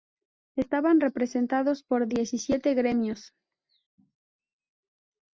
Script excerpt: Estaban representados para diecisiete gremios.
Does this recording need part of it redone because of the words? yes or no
yes